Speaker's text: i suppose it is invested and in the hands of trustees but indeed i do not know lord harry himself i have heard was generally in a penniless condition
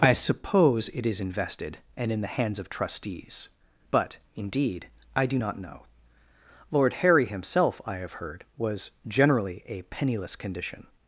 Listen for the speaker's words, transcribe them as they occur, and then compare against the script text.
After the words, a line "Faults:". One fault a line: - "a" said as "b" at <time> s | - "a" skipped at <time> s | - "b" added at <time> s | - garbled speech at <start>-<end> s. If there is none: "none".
i suppose it is invested and in the hands of trustees but indeed i do not know lord harry himself i have heard was generally a penniless condition
Faults:
- "in" skipped at 9.6 s